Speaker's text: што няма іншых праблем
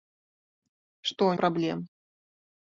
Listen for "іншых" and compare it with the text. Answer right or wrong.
wrong